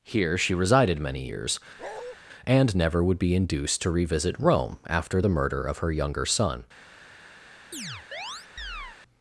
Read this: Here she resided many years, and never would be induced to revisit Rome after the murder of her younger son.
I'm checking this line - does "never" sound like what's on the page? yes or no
yes